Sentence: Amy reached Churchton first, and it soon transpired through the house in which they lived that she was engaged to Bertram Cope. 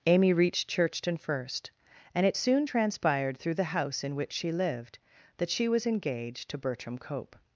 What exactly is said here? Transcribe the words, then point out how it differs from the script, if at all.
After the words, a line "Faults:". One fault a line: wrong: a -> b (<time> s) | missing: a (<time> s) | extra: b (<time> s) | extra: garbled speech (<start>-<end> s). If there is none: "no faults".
Amy reached Churchton first, and it soon transpired through the house in which she lived that she was engaged to Bertram Cope.
Faults:
wrong: they -> she (4.3 s)